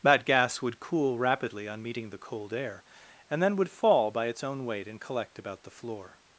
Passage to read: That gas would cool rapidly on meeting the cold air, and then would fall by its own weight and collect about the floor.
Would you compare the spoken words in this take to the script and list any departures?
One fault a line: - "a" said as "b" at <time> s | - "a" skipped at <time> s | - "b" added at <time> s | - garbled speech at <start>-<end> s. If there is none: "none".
none